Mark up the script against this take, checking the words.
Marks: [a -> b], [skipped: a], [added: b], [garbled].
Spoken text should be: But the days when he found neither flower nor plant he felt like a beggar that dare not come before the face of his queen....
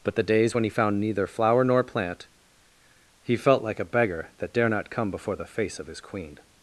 But the days when he found neither flower nor plant he felt like a beggar that dare not come before the face of his queen....